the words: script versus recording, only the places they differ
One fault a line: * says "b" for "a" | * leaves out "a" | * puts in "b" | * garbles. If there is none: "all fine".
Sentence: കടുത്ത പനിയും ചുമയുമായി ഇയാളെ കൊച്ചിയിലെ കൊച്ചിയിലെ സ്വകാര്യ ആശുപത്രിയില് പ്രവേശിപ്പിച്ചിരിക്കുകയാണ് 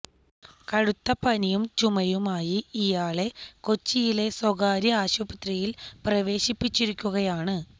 * leaves out "കൊച്ചിയിലെ"